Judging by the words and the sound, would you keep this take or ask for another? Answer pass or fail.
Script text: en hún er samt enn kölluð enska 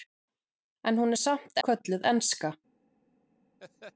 fail